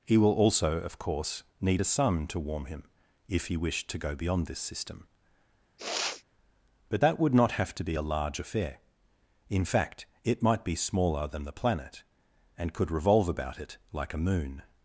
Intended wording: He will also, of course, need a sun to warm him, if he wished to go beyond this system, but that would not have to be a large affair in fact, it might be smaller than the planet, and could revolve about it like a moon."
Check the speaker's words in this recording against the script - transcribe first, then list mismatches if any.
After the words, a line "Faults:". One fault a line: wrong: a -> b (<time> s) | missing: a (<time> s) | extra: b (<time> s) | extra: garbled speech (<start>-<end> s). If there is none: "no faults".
He will also, of course, need a sun to warm him, if he wished to go beyond this system, but that would not have to be a large affair in fact, it might be smaller than the planet, and could revolve about it like a moon."
Faults:
no faults